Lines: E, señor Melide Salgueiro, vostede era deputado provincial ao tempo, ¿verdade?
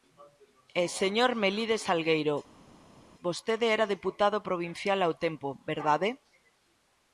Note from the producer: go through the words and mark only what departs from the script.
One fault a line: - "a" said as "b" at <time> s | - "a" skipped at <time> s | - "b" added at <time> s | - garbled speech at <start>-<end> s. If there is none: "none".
none